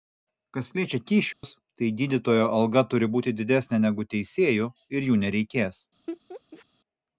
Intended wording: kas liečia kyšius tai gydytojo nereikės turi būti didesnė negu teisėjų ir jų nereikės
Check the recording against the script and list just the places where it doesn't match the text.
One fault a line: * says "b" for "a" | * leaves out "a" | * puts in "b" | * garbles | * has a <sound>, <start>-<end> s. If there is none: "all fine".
* has a dropout, 1.3-1.4 s
* says "alga" for "nereikės"
* has a laugh, 6.1-6.7 s